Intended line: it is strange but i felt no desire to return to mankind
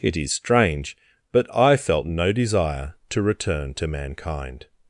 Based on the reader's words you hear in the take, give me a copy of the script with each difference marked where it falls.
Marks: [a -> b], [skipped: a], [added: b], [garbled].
it is strange but i felt no desire to return to mankind